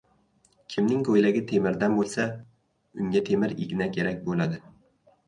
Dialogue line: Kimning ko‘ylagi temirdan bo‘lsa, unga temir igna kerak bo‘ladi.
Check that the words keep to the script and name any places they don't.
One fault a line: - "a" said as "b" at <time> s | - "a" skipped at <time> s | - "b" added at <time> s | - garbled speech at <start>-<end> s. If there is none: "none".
none